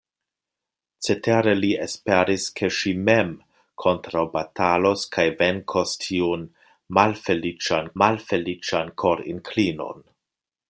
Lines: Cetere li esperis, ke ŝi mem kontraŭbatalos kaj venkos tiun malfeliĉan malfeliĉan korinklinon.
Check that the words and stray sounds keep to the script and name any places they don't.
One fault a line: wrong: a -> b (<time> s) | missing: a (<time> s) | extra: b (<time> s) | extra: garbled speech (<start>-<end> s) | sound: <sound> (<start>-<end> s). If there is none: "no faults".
no faults